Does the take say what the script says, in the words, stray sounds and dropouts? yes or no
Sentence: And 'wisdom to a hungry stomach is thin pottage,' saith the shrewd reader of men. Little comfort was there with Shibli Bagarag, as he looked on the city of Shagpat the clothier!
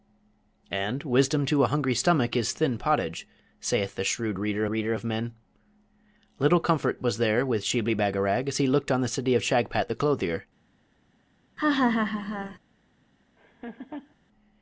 no